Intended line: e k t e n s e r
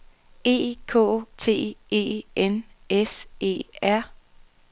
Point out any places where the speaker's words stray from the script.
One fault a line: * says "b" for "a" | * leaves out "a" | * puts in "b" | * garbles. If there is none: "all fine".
all fine